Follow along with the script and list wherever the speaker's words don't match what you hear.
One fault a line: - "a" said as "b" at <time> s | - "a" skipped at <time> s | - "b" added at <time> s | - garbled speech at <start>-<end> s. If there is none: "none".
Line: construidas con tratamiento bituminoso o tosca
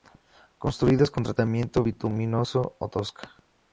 none